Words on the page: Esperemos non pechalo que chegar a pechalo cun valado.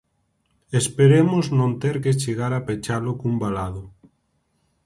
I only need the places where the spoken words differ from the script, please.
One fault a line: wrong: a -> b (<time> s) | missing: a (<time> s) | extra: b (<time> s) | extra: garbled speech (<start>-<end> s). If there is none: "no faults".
wrong: pechalo -> ter (1.8 s)